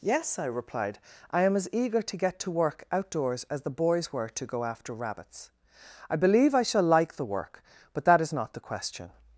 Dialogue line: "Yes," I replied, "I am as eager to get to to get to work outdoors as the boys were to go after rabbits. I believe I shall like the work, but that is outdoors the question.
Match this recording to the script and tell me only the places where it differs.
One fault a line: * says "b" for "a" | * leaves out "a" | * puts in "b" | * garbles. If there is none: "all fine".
* leaves out "to get to"
* says "not" for "outdoors"